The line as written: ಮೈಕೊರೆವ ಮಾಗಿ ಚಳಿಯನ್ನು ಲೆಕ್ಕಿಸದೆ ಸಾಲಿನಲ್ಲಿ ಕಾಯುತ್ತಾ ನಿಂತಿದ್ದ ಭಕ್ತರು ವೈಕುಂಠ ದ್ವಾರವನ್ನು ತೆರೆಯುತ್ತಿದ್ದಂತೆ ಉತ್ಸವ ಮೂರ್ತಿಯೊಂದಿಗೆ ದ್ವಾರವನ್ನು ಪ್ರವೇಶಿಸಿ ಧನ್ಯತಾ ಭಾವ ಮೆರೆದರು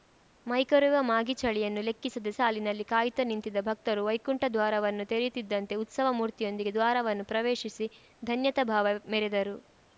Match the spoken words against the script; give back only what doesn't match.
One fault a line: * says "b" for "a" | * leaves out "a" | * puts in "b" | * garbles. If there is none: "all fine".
all fine